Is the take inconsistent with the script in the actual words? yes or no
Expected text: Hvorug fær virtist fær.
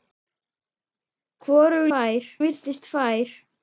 no